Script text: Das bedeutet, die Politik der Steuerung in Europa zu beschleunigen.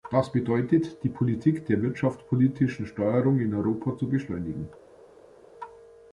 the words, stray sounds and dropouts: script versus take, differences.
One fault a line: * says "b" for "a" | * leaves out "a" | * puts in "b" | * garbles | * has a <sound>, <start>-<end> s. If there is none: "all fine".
* puts in "wirtschaftspolitischen"